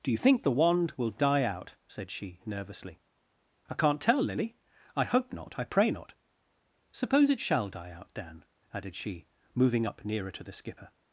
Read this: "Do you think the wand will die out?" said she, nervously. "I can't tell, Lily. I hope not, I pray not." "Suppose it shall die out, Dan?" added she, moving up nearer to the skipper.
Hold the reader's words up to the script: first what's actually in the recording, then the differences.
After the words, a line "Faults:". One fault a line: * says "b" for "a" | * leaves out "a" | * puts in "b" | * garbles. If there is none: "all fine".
"Do you think the wand will die out?" said she, nervously. "I can't tell, Lily. I hope not, I pray not." "Suppose it shall die out, Dan?" added she, moving up nearer to the skipper.
Faults:
all fine